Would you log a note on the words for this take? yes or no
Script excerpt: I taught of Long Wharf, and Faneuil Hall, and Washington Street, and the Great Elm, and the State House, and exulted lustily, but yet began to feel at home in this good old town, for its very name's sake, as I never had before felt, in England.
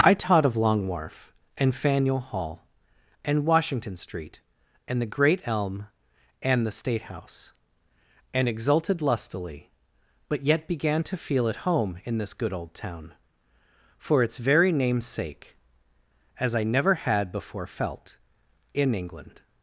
no